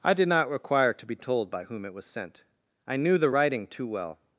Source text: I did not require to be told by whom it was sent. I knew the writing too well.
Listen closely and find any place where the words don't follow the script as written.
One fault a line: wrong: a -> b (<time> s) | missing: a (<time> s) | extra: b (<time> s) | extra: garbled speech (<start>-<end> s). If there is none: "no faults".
no faults